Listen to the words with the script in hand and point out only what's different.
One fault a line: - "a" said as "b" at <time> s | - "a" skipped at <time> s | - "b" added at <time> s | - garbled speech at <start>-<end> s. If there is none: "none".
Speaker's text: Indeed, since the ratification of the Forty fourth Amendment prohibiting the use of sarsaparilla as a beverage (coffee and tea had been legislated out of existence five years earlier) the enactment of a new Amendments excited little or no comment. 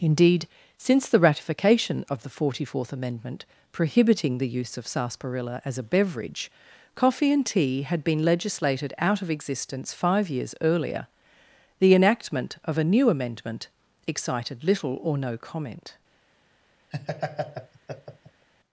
- "Amendments" said as "Amendment" at 13.1 s